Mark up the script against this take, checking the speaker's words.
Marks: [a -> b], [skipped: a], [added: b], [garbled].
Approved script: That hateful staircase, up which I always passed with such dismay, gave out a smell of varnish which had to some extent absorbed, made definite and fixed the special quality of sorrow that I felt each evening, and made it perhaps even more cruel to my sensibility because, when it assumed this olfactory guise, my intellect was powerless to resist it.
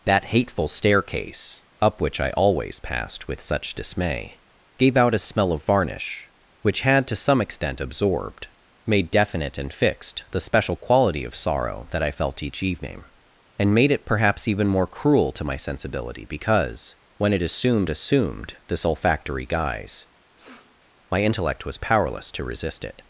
That hateful staircase, up which I always passed with such dismay, gave out a smell of varnish which had to some extent absorbed, made definite and fixed the special quality of sorrow that I felt each evening, and made it perhaps even more cruel to my sensibility because, when it assumed [added: assumed] this olfactory guise, my intellect was powerless to resist it.